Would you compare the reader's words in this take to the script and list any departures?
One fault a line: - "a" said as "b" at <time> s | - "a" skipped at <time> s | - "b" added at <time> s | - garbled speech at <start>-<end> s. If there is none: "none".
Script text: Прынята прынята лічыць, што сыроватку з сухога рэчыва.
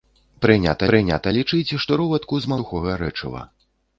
none